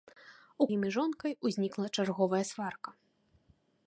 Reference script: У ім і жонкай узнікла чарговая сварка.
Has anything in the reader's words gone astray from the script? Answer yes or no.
no